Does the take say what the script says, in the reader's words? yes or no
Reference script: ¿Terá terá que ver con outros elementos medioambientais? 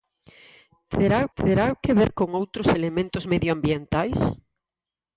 yes